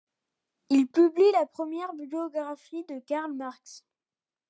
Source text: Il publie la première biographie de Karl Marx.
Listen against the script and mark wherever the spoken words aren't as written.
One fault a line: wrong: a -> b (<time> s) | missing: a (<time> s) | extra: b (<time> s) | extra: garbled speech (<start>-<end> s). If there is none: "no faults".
no faults